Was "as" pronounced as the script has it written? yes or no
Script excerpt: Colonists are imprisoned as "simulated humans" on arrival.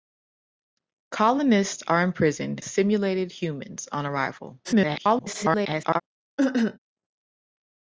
no